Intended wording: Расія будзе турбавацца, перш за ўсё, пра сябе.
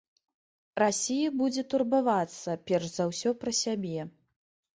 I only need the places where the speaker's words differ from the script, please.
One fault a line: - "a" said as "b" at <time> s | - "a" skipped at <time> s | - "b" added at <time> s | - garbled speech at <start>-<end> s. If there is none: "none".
none